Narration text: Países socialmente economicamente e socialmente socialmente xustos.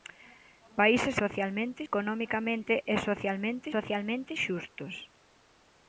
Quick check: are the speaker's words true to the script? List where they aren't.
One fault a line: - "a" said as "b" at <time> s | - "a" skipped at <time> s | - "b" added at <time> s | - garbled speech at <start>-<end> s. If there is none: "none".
none